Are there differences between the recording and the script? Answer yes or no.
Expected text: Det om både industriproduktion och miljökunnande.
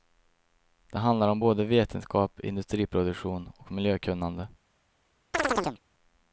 yes